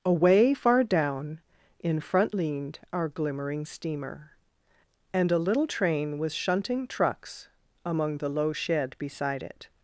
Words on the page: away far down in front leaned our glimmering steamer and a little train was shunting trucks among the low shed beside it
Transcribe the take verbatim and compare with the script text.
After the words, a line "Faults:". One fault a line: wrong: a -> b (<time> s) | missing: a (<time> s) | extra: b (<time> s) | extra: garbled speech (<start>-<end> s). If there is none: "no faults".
away far down in front leaned our glimmering steamer and a little train was shunting trucks among the low shed beside it
Faults:
no faults